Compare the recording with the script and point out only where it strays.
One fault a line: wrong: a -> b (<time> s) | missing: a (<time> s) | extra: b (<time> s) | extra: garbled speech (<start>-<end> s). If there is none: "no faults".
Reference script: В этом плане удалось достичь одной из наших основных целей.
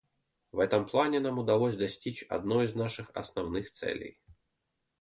extra: нам (1.2 s)